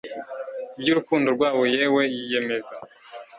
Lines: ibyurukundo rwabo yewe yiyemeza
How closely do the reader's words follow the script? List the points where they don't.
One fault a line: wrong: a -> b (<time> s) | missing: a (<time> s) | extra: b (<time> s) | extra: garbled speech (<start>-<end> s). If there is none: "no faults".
no faults